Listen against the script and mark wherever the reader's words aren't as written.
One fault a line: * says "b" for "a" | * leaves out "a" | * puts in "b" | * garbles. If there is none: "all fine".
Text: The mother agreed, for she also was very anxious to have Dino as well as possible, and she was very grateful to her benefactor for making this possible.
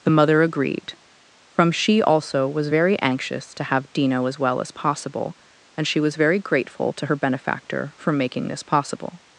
* says "from" for "for"